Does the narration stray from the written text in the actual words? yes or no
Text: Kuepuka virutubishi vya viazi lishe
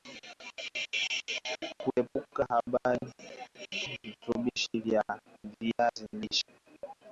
no